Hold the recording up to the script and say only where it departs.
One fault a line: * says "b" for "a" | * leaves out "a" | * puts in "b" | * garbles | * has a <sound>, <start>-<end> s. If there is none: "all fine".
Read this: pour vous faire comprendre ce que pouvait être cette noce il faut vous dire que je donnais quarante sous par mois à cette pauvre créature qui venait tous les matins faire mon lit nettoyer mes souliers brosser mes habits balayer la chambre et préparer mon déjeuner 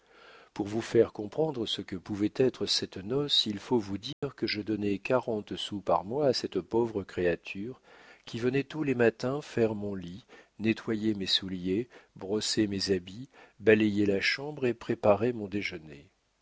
* has a dropout, 4.1-4.2 s